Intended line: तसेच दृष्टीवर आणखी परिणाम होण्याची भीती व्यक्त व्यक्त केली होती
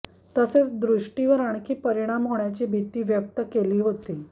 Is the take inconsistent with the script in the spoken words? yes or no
yes